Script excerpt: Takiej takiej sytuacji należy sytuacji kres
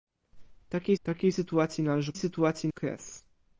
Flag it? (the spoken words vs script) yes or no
no